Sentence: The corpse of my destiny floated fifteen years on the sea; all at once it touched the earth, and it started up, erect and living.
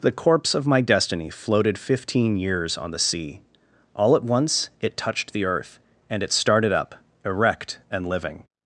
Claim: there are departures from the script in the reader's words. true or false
false